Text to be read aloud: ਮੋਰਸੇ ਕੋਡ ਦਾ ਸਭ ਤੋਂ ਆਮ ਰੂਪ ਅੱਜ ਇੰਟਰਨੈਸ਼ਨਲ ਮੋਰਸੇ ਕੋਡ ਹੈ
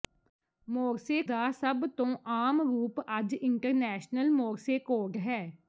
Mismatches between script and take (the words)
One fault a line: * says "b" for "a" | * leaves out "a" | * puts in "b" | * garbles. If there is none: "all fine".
* leaves out "ਕੋਡ"